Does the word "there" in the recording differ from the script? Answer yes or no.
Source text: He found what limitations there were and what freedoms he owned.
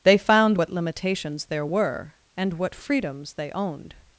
no